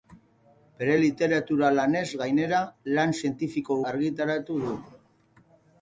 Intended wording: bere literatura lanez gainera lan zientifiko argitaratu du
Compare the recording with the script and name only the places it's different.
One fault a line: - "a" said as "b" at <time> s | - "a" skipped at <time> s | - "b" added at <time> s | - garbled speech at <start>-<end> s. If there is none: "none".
none